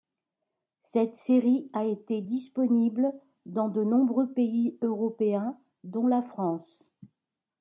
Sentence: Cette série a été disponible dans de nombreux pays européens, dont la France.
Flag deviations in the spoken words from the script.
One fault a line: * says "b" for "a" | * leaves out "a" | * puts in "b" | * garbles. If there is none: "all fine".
all fine